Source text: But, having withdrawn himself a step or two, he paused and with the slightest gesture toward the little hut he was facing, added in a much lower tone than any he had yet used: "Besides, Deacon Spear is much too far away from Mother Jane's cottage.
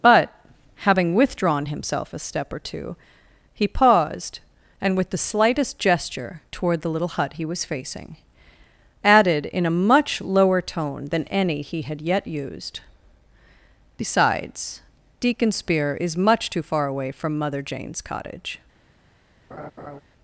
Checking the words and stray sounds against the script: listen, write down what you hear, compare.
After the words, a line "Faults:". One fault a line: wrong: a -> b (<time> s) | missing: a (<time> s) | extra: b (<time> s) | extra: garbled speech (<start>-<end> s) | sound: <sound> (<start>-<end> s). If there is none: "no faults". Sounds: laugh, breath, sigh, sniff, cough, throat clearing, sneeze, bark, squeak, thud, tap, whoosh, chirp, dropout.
But, having withdrawn himself a step or two, he paused and with the slightest gesture toward the little hut he was facing, added in a much lower tone than any he had yet used: "Besides, Deacon Spear is much too far away from Mother Jane's cottage.
Faults:
sound: laugh (19.5-20.0 s)